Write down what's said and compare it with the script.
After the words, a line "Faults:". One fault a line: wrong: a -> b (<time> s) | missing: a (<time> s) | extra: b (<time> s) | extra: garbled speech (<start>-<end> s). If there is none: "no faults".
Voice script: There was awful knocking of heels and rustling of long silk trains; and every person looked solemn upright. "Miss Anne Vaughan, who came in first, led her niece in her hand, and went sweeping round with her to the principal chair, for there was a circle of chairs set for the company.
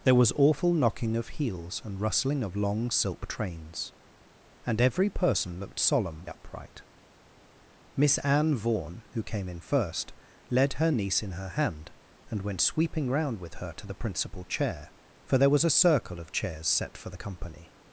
There was awful knocking of heels and rustling of long silk trains; and every person looked solemn upright. "Miss Anne Vaughan, who came in first, led her niece in her hand, and went sweeping round with her to the principal chair, for there was a circle of chairs set for the company.
Faults:
no faults